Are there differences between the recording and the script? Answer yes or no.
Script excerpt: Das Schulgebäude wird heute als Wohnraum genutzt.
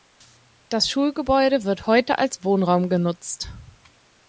no